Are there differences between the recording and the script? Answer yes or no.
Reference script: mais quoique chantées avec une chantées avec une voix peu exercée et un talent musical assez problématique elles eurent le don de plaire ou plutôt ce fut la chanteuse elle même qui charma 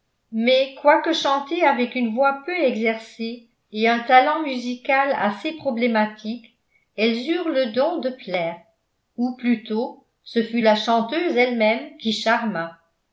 yes